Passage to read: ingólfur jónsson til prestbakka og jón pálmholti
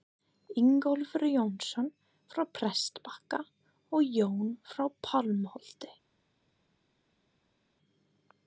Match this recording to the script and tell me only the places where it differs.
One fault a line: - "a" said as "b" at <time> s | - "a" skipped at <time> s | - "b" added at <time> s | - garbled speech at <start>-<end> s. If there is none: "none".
- "til" said as "frá" at 2.3 s
- "frá" added at 4.7 s